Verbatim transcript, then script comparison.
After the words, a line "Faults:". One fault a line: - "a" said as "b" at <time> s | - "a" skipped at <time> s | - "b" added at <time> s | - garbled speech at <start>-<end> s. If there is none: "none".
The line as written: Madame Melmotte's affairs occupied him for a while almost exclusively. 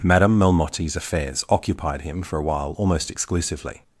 Madame Melmotte's affairs occupied him for a while almost exclusively.
Faults:
none